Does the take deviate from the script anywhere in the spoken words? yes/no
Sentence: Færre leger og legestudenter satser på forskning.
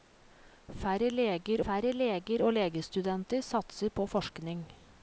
yes